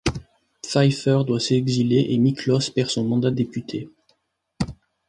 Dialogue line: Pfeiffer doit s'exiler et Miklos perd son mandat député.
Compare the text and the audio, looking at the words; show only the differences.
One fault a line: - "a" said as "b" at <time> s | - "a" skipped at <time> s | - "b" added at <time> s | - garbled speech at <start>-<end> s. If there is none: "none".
none